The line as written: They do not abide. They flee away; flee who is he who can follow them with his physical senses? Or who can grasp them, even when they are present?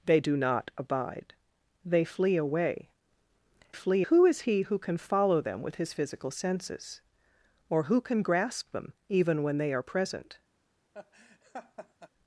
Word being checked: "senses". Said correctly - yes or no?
yes